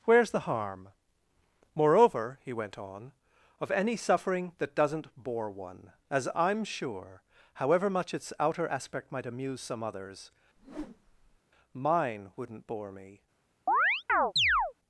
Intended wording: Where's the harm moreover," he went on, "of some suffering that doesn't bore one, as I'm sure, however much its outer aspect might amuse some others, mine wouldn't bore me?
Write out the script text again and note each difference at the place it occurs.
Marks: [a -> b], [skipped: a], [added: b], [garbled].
Where's the harm moreover," he went on, "of [some -> any] suffering that doesn't bore one, as I'm sure, however much its outer aspect might amuse some others, mine wouldn't bore me?